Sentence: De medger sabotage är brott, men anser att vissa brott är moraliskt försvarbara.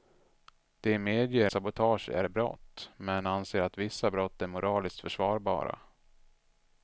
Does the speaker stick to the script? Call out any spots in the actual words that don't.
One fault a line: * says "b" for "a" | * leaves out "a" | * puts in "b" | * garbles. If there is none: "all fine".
all fine